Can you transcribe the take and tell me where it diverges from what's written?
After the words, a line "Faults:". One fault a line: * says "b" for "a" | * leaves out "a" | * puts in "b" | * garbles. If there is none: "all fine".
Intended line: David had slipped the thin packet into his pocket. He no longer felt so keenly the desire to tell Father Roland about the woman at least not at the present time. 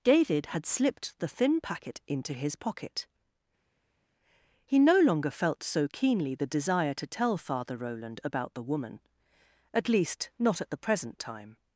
David had slipped the thin packet into his pocket. He no longer felt so keenly the desire to tell Father Roland about the woman at least not at the present time.
Faults:
all fine